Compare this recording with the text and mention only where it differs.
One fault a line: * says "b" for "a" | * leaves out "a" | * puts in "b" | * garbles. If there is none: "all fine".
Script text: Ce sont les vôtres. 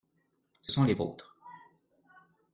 all fine